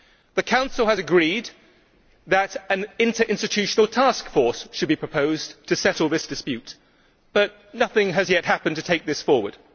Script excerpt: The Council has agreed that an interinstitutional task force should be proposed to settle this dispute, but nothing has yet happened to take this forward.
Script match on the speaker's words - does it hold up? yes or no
yes